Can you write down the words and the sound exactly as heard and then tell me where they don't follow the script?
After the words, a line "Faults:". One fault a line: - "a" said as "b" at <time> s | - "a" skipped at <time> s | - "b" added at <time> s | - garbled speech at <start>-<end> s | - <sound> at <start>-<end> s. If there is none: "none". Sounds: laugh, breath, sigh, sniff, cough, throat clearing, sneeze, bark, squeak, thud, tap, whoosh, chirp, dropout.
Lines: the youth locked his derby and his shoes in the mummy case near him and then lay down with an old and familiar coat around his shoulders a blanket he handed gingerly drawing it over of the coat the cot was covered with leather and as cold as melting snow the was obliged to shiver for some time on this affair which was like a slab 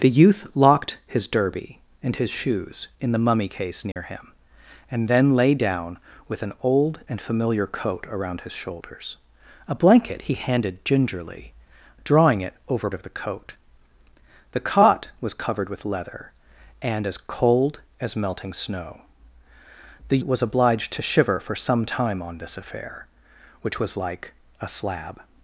the youth locked his derby and his shoes in the mummy case near him and then lay down with an old and familiar coat around his shoulders a blanket he handed gingerly drawing it over of the coat the cot was covered with leather and as cold as melting snow the was obliged to shiver for some time on this affair which was like a slab
Faults:
- dropout at 3.9-4.0 s